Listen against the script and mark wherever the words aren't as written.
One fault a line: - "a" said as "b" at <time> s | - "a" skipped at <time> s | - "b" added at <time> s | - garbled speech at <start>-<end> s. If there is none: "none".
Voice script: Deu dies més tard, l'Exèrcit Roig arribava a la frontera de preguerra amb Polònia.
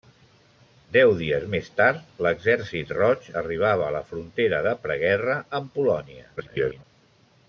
- garbled speech at 6.4-6.8 s